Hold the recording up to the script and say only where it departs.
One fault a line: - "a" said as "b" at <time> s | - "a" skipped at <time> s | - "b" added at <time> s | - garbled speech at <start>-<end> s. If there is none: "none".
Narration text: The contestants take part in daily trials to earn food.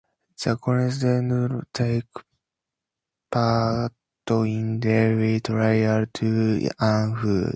none